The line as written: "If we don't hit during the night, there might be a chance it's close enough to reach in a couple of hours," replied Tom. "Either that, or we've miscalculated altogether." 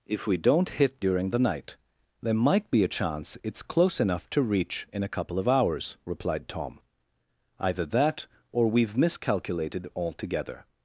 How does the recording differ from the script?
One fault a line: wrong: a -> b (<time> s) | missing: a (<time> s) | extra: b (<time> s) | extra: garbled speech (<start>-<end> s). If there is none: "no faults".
no faults